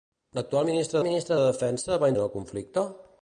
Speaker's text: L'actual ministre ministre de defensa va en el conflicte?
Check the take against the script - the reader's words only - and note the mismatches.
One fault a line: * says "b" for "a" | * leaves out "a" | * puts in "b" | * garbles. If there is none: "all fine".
all fine